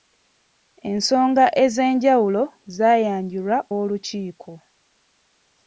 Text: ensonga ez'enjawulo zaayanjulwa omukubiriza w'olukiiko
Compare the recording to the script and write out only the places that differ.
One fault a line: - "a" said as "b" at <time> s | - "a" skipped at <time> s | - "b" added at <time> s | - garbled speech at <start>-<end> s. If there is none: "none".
- "omukubiriza" skipped at 3.6 s